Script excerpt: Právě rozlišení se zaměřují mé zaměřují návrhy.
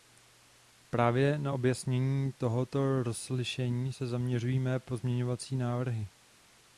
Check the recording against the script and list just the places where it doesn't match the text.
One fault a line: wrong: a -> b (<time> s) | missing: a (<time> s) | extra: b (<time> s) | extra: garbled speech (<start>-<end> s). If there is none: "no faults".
extra: na objasnění tohoto (1.4 s)
wrong: zaměřují -> pozměňovací (4.8 s)